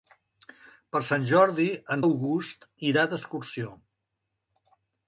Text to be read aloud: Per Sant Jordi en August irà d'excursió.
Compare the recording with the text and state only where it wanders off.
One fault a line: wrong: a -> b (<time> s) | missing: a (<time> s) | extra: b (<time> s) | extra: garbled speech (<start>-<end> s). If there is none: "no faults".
no faults